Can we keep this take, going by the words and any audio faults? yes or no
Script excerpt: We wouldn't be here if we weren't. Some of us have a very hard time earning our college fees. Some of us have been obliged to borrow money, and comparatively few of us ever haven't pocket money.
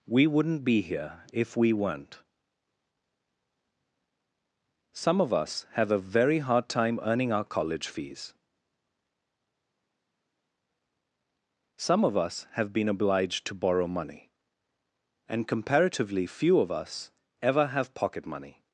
no